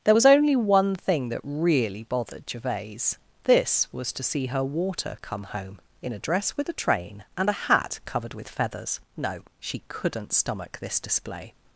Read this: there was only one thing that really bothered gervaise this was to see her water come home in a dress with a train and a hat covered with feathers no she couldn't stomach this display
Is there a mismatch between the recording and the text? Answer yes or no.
no